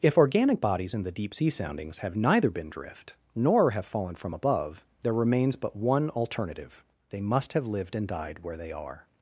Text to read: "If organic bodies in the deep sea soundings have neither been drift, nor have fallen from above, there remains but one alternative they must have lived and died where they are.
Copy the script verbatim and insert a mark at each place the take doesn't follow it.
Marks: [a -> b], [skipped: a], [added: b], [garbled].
"If organic bodies in the deep sea soundings have neither been drift, nor have fallen from above, there remains but one alternative they must have lived and died where they are.